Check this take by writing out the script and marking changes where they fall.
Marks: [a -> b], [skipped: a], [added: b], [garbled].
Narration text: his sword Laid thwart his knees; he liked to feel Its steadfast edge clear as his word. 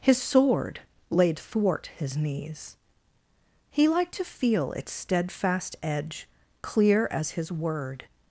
his sword Laid thwart his knees; he liked to feel Its steadfast edge clear as his word.